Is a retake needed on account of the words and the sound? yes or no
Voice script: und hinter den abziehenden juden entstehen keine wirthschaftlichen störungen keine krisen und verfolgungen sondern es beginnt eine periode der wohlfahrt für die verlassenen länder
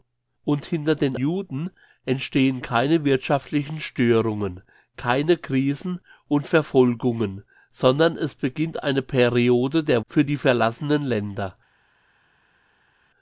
yes